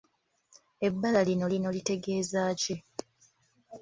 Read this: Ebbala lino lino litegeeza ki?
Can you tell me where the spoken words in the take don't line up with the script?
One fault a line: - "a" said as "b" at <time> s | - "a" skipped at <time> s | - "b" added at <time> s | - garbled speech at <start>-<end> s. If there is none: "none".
none